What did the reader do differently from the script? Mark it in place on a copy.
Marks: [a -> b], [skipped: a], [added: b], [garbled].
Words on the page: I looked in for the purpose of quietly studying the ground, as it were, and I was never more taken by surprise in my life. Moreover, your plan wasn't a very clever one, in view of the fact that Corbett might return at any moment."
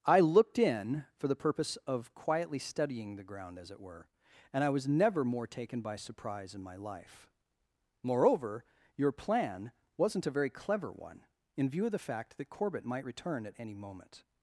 I looked in for the purpose of quietly studying the ground, as it were, and I was never more taken by surprise in my life. Moreover, your plan wasn't a very clever one, in view of the fact that Corbett might return at any moment."